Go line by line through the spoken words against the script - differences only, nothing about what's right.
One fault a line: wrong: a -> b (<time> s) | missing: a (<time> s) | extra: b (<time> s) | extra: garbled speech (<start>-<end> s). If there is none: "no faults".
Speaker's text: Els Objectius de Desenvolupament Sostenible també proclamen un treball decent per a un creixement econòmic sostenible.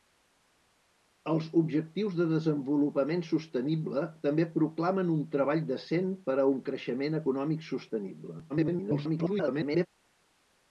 extra: garbled speech (8.5-9.9 s)